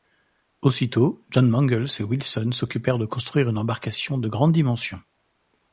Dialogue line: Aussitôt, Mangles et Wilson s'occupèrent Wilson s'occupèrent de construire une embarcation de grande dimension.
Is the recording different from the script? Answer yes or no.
yes